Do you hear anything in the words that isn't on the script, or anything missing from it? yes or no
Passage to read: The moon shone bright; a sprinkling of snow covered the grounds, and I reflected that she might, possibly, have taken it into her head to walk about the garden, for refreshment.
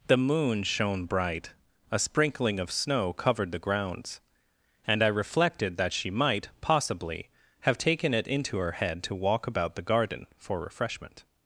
no